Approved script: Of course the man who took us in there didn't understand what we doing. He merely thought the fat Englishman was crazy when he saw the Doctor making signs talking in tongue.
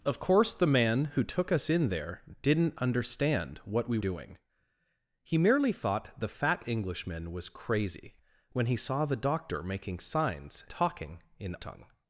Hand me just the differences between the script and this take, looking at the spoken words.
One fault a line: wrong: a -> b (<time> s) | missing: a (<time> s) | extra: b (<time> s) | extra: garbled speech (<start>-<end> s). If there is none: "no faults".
no faults